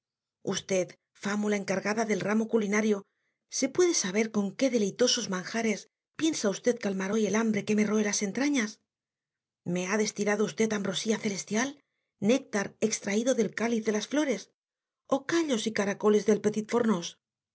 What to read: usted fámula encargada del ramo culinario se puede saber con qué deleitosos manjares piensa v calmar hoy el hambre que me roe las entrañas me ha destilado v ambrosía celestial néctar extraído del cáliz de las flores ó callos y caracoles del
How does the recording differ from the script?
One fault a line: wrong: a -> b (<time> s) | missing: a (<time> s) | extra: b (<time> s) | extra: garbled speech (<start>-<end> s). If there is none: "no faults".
no faults